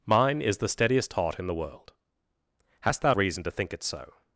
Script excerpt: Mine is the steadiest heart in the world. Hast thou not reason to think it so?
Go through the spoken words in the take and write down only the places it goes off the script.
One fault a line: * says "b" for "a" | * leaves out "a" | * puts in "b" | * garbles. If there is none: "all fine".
* leaves out "not"